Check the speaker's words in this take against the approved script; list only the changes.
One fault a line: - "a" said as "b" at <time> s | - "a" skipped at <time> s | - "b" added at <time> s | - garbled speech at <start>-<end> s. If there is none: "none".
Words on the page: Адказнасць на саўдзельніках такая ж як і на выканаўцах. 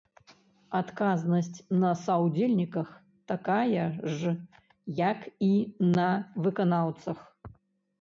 none